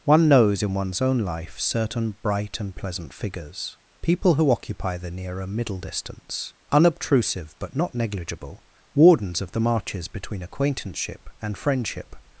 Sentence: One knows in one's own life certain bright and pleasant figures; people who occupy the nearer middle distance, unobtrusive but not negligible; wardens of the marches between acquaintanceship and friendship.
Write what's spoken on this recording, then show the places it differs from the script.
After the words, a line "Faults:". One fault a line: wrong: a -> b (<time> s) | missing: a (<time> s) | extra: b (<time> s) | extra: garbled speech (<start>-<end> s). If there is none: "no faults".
One knows in one's own life certain bright and pleasant figures; people who occupy the nearer middle distance, unobtrusive but not negligible; wardens of the marches between acquaintanceship and friendship.
Faults:
no faults